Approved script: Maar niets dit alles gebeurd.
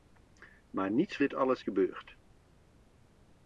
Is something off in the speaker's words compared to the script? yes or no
no